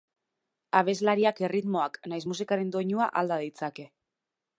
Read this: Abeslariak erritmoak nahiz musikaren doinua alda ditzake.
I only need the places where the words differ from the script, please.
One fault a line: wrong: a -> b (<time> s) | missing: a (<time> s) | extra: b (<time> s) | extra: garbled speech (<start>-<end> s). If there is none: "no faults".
no faults